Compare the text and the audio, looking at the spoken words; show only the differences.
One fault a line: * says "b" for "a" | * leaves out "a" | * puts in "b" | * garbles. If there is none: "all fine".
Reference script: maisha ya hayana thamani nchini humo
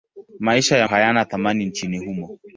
all fine